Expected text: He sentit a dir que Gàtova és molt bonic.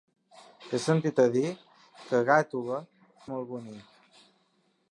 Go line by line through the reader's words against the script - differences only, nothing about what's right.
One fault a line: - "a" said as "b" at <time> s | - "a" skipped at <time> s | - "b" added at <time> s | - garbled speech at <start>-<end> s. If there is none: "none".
- "és" skipped at 2.8 s